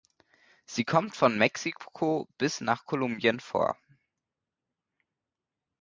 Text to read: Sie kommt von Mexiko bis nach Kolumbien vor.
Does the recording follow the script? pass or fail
pass